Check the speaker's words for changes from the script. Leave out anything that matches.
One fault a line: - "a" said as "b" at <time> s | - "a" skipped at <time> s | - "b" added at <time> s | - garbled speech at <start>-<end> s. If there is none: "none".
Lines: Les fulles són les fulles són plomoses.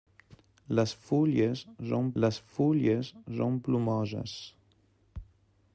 none